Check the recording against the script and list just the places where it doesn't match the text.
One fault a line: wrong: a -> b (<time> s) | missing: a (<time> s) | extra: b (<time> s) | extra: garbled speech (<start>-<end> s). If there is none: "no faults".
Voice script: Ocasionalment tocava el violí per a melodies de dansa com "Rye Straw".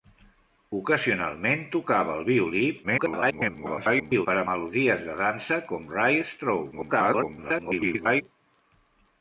extra: garbled speech (2.8-4.3 s)
extra: garbled speech (6.7-8.2 s)